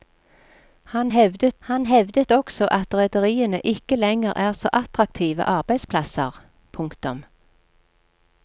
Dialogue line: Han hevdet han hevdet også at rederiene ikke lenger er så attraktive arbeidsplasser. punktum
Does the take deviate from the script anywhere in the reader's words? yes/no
no